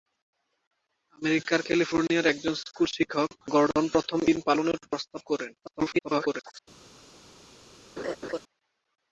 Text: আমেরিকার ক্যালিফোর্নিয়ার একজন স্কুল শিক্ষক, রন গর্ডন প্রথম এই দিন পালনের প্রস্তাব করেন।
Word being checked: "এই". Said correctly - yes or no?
no